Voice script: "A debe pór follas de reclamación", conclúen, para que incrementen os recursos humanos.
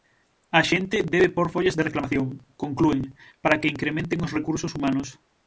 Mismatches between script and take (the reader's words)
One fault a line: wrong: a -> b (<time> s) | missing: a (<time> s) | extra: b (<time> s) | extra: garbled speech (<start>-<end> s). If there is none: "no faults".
extra: xente (0.7 s)